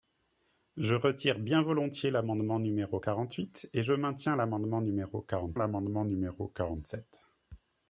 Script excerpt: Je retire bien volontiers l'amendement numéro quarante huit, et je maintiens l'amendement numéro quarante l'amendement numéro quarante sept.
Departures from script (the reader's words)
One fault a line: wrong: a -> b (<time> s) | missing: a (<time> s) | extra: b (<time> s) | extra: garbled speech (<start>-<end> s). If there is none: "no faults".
no faults